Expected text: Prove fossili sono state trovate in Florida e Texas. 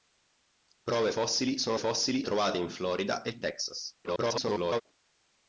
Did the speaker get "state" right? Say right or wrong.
wrong